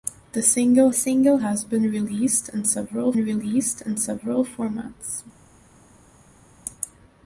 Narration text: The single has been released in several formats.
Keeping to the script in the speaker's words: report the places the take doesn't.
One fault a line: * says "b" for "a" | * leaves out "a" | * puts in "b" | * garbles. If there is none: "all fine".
* puts in "single"
* puts in "released in several"